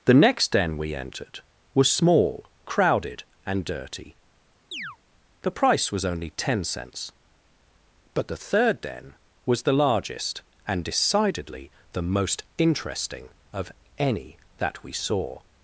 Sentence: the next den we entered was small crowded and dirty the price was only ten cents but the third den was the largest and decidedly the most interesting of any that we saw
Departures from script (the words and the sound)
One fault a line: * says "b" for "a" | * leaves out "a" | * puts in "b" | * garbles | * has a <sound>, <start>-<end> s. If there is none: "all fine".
* has a chirp, 4.7-5.0 s